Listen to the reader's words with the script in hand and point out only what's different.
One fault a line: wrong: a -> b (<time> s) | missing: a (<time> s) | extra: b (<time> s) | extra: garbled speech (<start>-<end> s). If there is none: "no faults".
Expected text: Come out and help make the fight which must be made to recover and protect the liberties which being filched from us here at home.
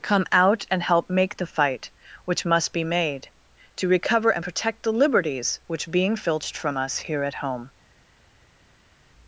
no faults